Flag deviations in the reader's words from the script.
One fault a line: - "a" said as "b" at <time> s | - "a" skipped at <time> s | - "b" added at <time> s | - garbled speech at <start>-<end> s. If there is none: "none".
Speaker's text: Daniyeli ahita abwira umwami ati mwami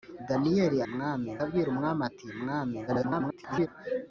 - "ahita" said as "mwami" at 0.9 s
- garbled speech at 2.9-3.7 s